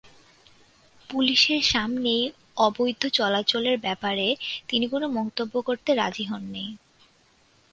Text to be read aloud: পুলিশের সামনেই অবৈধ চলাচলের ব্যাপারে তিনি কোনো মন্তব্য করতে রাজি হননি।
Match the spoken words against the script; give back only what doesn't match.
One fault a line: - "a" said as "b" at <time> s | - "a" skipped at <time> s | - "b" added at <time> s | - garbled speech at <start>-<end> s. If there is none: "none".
none